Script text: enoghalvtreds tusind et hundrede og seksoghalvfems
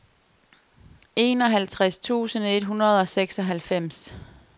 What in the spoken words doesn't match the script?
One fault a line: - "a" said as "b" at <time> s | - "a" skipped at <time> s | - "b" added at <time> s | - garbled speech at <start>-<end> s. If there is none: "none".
none